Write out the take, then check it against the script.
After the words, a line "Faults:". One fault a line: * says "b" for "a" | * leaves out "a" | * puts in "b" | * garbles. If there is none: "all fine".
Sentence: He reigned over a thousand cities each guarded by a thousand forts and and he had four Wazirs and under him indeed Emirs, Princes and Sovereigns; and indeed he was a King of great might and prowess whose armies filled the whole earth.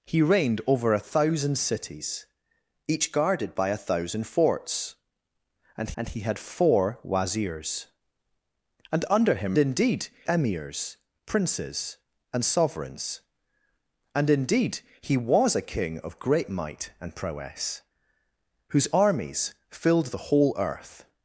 He reigned over a thousand cities each guarded by a thousand forts and and he had four Wazirs and under him indeed Emirs, Princes and Sovereigns; and indeed he was a King of great might and prowess whose armies filled the whole earth.
Faults:
all fine